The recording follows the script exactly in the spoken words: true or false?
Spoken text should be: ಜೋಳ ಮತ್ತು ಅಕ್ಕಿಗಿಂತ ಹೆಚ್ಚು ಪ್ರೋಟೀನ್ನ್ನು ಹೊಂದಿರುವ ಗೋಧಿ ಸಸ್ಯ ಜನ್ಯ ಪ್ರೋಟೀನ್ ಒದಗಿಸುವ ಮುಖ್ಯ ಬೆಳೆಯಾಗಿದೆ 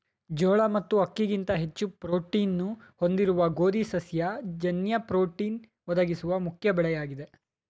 true